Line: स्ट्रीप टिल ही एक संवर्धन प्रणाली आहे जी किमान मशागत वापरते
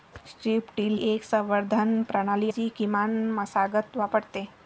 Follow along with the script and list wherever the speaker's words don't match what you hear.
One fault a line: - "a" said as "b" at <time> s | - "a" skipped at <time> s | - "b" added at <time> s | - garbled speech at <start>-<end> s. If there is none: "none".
- "ही" skipped at 1.0 s
- "आहे" skipped at 2.5 s